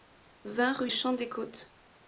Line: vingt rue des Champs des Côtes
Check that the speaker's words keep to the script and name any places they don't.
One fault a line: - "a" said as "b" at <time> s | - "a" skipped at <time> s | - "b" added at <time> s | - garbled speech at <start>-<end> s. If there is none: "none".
- "des" skipped at 0.9 s